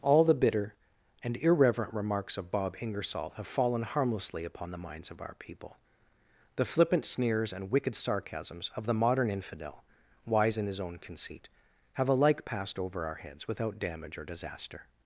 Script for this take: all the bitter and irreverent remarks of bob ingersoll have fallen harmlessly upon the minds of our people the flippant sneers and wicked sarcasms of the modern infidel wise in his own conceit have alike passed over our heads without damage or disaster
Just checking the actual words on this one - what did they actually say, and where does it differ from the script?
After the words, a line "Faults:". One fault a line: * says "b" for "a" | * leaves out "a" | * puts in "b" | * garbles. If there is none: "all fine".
all the bitter and irreverent remarks of bob ingersoll have fallen harmlessly upon the minds of our people the flippant sneers and wicked sarcasms of the modern infidel wise in his own conceit have alike passed over our heads without damage or disaster
Faults:
all fine